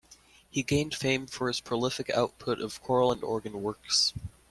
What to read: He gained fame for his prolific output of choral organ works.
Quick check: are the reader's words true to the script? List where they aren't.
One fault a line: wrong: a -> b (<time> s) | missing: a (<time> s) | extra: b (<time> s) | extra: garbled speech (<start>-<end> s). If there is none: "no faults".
extra: and (3.1 s)